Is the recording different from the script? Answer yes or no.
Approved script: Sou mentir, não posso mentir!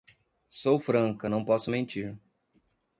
yes